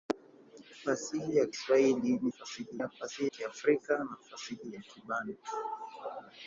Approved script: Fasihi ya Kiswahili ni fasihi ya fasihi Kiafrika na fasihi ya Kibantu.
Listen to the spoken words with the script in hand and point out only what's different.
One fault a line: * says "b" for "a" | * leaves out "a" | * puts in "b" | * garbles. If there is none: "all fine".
all fine